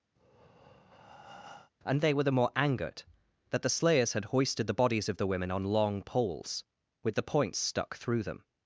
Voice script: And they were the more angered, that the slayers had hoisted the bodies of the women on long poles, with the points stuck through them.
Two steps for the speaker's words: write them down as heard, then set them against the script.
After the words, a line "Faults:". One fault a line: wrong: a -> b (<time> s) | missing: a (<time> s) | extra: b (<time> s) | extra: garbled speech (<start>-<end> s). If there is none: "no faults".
And they were the more angered, that the slayers had hoisted the bodies of the women on long poles, with the points stuck through them.
Faults:
no faults